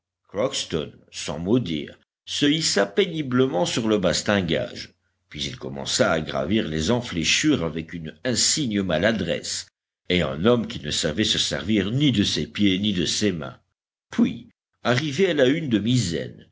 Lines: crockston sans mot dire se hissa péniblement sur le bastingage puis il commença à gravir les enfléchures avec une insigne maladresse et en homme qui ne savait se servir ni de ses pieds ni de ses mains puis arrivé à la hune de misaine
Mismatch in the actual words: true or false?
false